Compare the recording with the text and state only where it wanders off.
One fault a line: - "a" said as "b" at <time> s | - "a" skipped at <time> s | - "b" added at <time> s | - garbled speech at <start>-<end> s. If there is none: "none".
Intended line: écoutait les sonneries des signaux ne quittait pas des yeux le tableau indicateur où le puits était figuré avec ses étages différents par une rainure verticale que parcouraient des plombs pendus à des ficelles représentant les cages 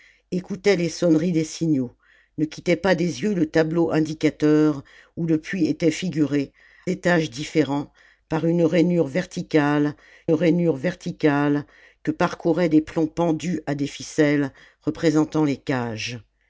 - "avec ses" skipped at 6.5 s
- "rainure verticale" added at 10.3 s